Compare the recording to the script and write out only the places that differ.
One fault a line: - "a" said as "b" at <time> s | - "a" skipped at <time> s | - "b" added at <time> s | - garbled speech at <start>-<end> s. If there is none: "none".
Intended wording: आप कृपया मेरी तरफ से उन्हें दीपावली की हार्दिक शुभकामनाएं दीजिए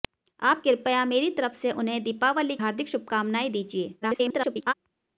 - "की" skipped at 2.6 s
- garbled speech at 4.0-4.7 s